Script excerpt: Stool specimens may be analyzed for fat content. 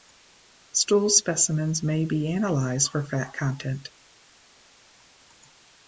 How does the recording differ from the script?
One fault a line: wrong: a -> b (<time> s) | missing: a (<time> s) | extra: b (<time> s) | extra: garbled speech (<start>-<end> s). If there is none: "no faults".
no faults